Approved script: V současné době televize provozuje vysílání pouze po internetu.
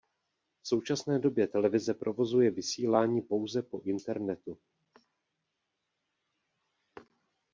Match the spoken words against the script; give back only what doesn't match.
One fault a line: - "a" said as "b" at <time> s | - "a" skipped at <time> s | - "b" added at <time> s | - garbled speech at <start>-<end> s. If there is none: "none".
none